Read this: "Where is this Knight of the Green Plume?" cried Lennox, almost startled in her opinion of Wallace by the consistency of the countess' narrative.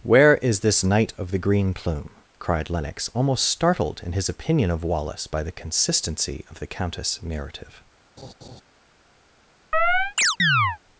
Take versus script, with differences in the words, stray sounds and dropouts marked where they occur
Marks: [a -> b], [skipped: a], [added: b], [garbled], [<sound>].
"Where is this Knight of the Green Plume?" cried Lennox, almost startled in [her -> his] opinion of Wallace by the consistency of the countess' narrative. [laugh] [chirp]